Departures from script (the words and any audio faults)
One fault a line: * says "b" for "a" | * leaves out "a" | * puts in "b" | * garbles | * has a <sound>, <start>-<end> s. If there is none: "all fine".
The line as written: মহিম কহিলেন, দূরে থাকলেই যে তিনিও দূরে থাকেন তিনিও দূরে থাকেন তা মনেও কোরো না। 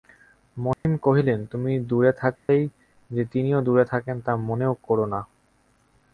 * has a dropout, 0.7-0.8 s
* puts in "তুমি"
* has a dropout, 2.4-2.5 s
* leaves out "তিনিও দূরে থাকেন"